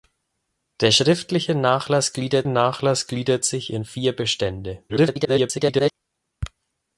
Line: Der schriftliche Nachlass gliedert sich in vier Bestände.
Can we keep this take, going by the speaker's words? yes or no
no